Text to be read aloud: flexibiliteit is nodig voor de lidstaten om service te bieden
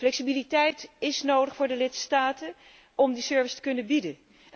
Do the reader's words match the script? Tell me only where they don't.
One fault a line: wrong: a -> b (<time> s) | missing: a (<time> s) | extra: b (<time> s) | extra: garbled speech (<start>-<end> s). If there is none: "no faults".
extra: die (3.1 s)
extra: kunnen (3.6 s)